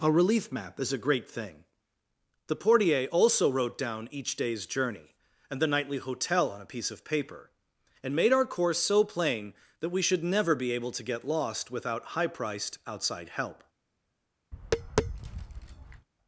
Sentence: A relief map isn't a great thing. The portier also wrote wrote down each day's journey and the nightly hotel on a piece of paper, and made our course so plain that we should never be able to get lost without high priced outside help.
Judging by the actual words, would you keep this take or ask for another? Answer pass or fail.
fail